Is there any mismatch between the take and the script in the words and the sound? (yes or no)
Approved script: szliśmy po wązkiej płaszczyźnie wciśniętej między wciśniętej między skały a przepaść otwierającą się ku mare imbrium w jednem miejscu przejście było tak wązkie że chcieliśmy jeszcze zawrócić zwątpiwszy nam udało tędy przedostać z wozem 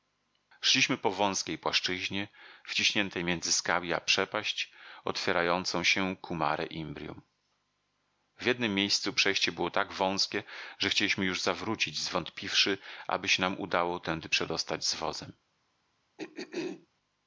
yes